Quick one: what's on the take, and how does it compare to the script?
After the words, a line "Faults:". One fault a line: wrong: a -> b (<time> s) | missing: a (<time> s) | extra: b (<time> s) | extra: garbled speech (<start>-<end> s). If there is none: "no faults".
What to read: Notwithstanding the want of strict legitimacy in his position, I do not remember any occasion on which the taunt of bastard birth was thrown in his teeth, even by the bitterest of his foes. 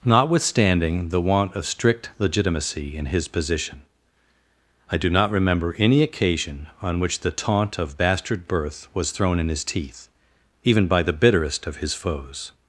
Notwithstanding the want of strict legitimacy in his position, I do not remember any occasion on which the taunt of bastard birth was thrown in his teeth, even by the bitterest of his foes.
Faults:
no faults